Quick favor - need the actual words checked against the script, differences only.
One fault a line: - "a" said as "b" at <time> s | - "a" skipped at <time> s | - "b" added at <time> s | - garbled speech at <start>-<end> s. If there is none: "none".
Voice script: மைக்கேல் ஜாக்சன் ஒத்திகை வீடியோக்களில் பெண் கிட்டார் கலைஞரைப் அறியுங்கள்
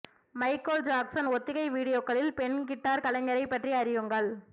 - "பற்றி" added at 3.5 s